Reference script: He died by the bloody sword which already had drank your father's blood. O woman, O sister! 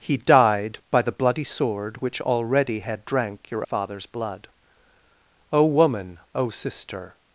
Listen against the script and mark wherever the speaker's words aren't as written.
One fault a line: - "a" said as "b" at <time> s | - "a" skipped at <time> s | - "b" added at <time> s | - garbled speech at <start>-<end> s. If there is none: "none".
none